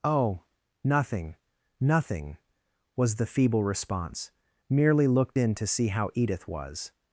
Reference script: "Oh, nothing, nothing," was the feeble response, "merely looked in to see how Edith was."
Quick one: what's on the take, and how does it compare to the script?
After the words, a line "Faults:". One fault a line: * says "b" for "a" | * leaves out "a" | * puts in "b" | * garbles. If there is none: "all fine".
"Oh, nothing, nothing," was the feeble response, "merely looked in to see how Edith was."
Faults:
all fine